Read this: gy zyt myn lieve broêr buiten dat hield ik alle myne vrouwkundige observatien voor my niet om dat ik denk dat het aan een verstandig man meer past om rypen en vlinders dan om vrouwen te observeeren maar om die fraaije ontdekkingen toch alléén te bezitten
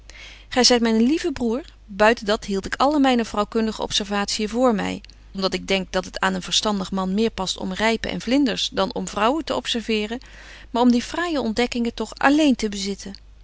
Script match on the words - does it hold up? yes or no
no